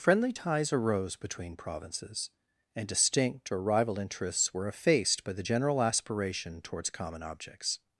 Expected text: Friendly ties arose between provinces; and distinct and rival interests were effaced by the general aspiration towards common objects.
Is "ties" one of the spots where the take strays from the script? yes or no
no